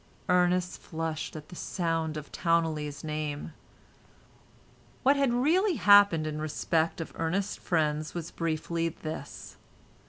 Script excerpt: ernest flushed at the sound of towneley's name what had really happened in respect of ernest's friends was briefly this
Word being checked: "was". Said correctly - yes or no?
yes